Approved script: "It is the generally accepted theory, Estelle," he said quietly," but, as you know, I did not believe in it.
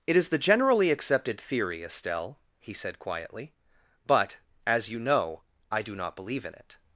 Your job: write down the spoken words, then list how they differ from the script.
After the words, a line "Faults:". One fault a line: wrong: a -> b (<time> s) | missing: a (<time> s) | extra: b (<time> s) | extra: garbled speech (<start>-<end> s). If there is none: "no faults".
"It is the generally accepted theory, Estelle," he said quietly," but, as you know, I do not believe in it.
Faults:
wrong: did -> do (5.8 s)